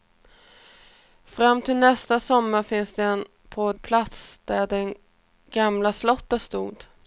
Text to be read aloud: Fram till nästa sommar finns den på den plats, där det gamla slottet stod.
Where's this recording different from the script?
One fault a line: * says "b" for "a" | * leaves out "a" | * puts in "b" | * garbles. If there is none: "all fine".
* leaves out "den"